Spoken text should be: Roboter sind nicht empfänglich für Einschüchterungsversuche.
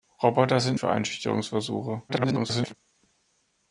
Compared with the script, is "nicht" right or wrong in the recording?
wrong